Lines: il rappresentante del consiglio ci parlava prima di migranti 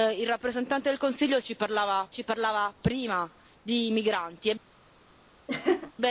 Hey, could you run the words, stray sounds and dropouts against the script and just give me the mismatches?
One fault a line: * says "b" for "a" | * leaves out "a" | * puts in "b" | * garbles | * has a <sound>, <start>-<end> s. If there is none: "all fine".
* puts in "ci parlava"
* has a laugh, 5.5-5.9 s